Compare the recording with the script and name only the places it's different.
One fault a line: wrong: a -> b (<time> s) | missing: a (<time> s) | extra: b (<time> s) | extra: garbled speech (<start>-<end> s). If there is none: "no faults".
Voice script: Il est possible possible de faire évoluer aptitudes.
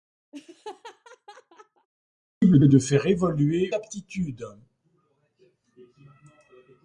no faults